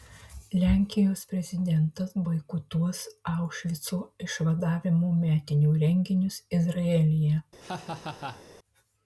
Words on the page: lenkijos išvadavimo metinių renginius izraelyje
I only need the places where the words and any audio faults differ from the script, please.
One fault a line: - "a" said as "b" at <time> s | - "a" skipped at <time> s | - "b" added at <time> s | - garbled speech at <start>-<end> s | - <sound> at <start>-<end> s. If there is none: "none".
- "prezidentas boikotuos aušvico" added at 1.3 s
- laugh at 7.6-8.4 s